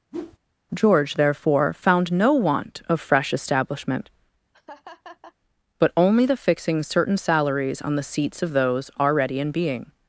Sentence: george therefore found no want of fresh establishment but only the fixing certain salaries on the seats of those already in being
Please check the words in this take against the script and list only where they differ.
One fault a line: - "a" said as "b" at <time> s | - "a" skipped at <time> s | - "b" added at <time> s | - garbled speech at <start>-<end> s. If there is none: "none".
none